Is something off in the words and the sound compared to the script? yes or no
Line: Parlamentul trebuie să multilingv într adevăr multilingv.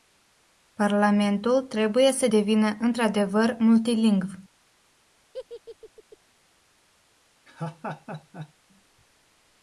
yes